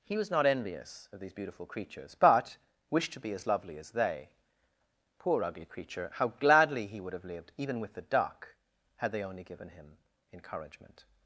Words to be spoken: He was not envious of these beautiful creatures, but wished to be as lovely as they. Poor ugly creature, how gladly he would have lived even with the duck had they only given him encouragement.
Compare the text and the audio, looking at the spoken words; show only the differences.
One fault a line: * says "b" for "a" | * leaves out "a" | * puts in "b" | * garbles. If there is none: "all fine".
all fine